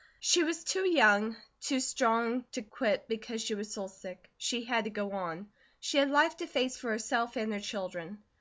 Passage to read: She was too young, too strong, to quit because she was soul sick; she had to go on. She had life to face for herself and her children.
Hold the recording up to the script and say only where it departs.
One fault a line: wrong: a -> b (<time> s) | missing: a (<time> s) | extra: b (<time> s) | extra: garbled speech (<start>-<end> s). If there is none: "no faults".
no faults